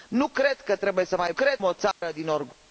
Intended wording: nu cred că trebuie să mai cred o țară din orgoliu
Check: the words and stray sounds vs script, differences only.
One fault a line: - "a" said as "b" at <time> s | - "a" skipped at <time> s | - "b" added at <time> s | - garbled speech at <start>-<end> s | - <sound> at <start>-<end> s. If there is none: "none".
- dropout at 1.9-2.0 s